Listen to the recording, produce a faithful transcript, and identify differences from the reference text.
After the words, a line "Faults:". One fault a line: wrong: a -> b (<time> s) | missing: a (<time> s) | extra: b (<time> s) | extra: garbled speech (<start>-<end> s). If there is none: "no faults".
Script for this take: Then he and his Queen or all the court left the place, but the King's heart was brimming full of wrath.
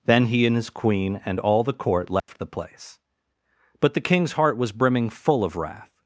Then he and his Queen and all the court left the place, but the King's heart was brimming full of wrath.
Faults:
wrong: or -> and (1.2 s)